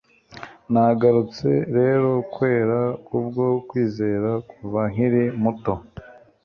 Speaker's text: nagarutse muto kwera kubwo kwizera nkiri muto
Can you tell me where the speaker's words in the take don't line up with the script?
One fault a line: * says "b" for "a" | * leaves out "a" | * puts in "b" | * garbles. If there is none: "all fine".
* says "rero" for "muto"
* puts in "kuva"